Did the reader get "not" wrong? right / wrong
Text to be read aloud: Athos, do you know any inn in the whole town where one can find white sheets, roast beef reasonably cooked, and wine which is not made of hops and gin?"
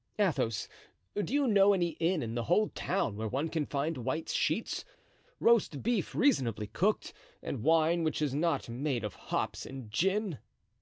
right